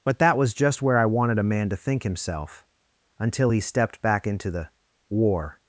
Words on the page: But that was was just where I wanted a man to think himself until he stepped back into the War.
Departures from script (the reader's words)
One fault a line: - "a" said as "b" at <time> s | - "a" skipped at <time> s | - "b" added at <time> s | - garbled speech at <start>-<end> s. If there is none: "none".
- "was" skipped at 0.5 s